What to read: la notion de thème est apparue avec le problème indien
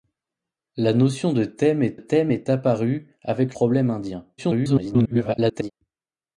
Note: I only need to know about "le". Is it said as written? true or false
false